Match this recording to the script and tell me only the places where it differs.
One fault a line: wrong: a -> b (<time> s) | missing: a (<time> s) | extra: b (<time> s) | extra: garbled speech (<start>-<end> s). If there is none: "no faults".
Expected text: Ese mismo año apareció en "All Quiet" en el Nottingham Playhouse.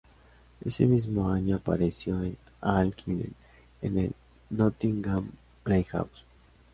no faults